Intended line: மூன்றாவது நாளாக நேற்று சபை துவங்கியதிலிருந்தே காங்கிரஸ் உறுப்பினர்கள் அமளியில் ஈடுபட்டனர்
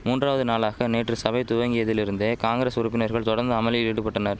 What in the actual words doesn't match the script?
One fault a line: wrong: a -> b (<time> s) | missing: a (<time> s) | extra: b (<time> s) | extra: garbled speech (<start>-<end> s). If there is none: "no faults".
extra: தொடர்ந்து (3.3 s)